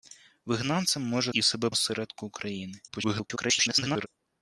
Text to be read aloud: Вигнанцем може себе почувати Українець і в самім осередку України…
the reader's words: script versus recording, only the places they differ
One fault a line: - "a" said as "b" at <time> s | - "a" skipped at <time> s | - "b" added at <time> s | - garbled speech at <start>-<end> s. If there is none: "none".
- "себе почувати Українець" skipped at 1.3 s
- "самім" said as "себе" at 1.4 s
- garbled speech at 2.9-4.1 s